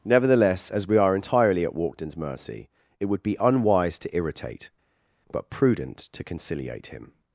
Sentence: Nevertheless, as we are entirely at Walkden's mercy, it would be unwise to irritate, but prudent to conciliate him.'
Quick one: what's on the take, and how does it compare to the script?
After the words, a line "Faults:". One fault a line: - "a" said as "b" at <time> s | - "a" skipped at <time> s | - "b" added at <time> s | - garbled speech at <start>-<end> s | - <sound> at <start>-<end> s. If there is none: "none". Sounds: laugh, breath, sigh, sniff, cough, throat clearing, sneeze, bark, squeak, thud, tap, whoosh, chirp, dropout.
Nevertheless, as we are entirely at Walkden's mercy, it would be unwise to irritate, but prudent to conciliate him.'
Faults:
none